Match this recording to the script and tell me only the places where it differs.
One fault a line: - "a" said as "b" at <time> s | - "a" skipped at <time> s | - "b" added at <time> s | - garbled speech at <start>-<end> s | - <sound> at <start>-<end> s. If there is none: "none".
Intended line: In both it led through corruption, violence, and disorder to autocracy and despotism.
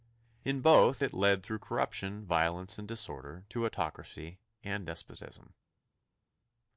none